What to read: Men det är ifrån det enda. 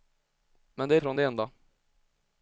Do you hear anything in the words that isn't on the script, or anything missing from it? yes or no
no